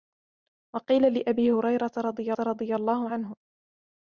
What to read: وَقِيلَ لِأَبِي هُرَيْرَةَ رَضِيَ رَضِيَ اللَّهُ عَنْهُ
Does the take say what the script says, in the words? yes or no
yes